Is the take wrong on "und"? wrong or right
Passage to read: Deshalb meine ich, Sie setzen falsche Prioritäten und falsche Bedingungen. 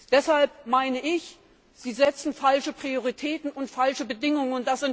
right